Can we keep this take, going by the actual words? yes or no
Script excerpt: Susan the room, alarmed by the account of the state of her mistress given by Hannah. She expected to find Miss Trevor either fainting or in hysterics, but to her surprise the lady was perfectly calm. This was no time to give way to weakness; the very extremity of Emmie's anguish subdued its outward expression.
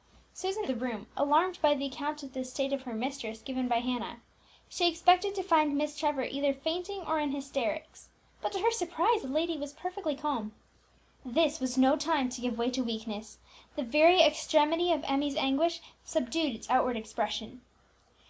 yes